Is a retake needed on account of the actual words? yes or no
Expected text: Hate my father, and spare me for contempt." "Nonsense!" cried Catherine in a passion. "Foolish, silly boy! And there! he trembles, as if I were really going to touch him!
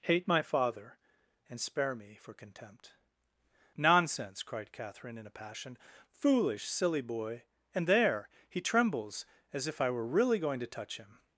no